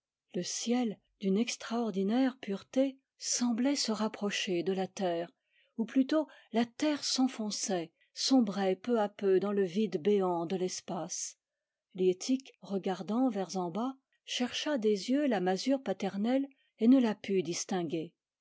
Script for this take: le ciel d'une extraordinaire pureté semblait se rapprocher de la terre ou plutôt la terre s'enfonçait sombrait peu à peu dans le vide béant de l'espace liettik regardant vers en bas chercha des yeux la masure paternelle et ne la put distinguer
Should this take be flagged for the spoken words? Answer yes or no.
no